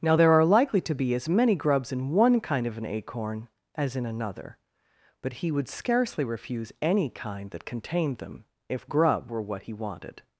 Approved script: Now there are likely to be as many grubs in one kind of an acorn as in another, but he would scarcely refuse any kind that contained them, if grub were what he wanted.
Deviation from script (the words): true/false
false